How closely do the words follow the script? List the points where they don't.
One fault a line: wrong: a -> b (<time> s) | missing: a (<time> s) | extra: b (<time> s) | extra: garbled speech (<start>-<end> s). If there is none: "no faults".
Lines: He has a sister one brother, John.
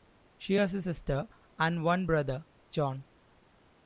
wrong: He -> She (0.4 s)
extra: and (1.6 s)